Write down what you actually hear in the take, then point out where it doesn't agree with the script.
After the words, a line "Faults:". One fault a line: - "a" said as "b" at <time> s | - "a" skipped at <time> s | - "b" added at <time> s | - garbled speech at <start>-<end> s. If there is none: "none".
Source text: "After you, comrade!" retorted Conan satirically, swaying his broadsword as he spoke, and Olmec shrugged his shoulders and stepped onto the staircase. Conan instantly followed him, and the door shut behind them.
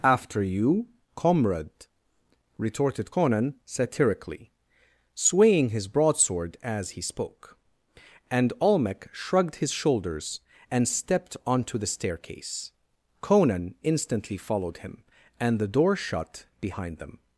"After you, comrade!" retorted Conan satirically, swaying his broadsword as he spoke, and Olmec shrugged his shoulders and stepped onto the staircase. Conan instantly followed him, and the door shut behind them.
Faults:
none